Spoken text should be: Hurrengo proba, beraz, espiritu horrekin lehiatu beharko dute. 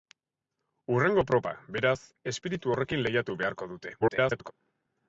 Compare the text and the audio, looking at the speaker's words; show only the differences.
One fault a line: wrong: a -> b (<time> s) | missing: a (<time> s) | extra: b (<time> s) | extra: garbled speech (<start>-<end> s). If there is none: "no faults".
extra: garbled speech (4.0-4.5 s)